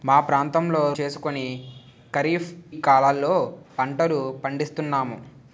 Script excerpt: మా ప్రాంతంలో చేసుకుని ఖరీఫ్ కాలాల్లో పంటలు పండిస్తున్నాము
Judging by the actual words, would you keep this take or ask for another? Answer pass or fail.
pass